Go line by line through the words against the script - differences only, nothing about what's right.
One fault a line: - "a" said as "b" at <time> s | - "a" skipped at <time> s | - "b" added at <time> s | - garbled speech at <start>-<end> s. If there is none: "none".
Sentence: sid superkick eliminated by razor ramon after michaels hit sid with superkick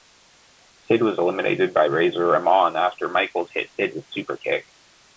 - "superkick" said as "was" at 1.0 s